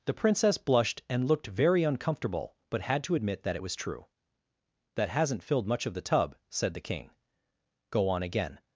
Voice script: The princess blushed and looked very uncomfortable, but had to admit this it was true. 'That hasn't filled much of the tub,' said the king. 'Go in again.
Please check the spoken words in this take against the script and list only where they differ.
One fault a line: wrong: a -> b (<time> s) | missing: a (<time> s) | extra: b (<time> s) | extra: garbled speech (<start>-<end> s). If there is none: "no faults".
wrong: this -> that (3.4 s)
wrong: in -> on (8.1 s)